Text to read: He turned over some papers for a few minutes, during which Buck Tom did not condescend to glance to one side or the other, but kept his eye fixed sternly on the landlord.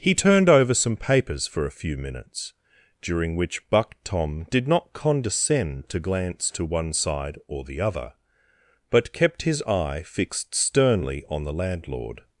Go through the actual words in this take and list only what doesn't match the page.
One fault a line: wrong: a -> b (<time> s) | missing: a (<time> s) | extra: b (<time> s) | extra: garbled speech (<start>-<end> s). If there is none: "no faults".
no faults